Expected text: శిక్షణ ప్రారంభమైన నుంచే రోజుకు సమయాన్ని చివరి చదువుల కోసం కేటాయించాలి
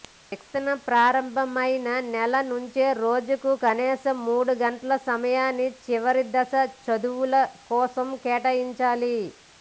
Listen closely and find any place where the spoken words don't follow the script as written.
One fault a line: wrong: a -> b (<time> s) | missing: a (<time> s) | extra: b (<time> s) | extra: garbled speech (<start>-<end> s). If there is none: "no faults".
extra: నెల (2.1 s)
extra: కనీసం మూడు గంటల (3.6 s)
extra: దశ (6.3 s)